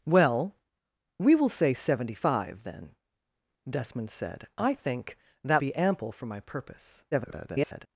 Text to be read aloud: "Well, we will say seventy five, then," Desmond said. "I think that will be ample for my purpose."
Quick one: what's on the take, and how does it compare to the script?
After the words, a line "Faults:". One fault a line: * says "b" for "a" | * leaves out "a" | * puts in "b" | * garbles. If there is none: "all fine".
"Well, we will say seventy five, then," Desmond said. "I think that be ample for my purpose." [garbled]
Faults:
* leaves out "will"
* garbles